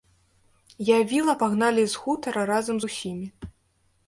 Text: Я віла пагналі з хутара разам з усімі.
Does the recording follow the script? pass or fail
pass